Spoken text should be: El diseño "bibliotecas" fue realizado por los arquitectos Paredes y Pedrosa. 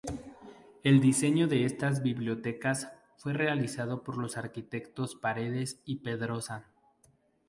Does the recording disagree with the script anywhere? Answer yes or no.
yes